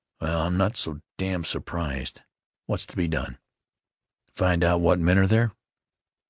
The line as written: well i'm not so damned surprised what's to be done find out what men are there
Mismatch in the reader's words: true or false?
false